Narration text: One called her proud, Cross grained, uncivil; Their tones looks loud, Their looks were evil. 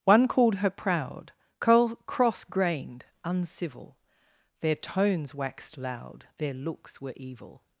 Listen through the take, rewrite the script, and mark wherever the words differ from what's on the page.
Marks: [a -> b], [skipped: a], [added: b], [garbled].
One called her proud, Cross grained, uncivil; Their tones [looks -> waxed] loud, Their looks were evil.